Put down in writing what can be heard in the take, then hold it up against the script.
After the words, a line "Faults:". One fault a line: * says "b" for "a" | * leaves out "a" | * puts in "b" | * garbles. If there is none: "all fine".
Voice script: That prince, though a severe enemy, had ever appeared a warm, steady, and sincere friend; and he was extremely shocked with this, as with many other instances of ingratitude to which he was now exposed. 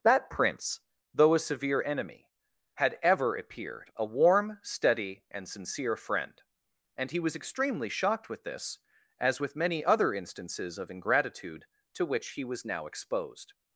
That prince, though a severe enemy, had ever appeared a warm, steady, and sincere friend; and he was extremely shocked with this, as with many other instances of ingratitude to which he was now exposed.
Faults:
all fine